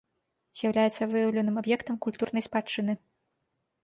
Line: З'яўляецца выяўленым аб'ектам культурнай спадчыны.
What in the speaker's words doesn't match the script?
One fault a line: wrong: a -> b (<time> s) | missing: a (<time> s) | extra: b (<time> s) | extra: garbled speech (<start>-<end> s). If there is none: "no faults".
no faults